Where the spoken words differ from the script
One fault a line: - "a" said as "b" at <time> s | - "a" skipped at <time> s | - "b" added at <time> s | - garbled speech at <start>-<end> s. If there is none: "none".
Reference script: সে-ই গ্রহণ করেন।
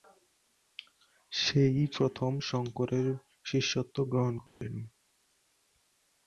- "প্রথম শঙ্করের শিষ্যত্ব" added at 2.0 s